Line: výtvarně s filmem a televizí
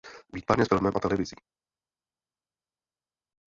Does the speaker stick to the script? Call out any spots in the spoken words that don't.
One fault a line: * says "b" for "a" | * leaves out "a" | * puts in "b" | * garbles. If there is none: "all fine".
all fine